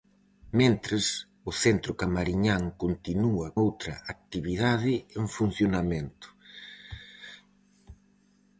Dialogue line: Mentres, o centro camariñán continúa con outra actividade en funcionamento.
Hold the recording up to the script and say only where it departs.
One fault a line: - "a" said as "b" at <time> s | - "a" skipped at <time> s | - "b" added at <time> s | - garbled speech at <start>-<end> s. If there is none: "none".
- "con" skipped at 3.5 s